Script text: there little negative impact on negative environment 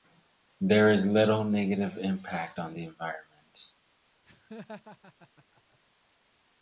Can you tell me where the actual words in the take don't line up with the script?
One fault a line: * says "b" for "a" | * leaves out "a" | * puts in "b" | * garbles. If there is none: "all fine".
* puts in "is"
* says "the" for "negative"